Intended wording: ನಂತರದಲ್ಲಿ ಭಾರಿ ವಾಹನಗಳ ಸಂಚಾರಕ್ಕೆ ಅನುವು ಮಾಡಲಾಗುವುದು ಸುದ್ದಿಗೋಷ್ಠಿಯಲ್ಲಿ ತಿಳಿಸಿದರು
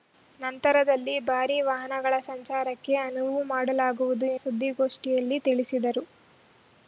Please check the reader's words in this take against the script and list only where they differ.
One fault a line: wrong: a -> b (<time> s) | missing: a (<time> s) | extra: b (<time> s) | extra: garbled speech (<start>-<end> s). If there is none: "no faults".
no faults